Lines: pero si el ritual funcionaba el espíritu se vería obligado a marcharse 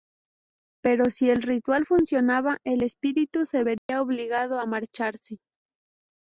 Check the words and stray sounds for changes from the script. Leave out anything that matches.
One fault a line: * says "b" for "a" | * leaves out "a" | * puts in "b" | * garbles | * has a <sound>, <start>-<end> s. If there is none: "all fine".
* has a dropout, 3.8-3.9 s